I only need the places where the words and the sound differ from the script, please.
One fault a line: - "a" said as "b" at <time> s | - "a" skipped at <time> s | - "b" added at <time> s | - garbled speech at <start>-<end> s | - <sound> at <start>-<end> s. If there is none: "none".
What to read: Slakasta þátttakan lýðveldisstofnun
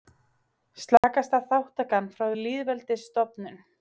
- dropout at 1.0-1.0 s
- "frá" added at 2.1 s